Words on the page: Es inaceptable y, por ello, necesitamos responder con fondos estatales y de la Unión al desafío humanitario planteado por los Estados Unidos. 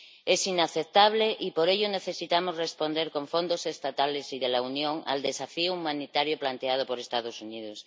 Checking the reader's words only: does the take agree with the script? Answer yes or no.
yes